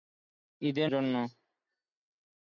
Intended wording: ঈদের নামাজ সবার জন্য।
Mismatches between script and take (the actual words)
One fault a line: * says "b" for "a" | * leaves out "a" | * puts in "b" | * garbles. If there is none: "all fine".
* leaves out "নামাজ সবার"